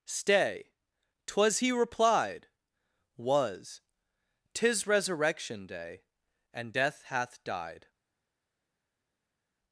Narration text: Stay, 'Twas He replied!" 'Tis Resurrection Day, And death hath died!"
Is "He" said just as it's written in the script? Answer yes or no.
yes